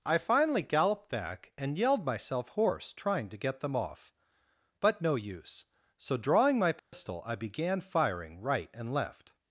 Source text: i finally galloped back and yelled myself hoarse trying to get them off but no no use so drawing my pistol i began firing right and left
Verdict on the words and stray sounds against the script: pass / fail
fail